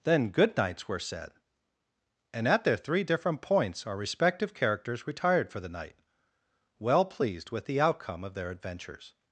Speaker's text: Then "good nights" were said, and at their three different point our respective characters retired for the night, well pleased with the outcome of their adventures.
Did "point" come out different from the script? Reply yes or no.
yes